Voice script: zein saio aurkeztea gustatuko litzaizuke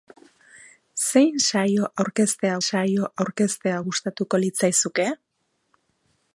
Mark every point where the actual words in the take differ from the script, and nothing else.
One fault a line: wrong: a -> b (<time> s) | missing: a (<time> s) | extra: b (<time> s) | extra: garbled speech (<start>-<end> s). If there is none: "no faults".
extra: saio aurkeztea (2.7 s)